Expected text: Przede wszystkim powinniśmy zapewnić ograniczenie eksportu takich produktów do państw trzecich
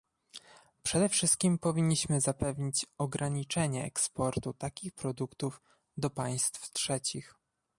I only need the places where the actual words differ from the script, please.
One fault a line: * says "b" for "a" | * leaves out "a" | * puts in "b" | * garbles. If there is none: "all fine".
all fine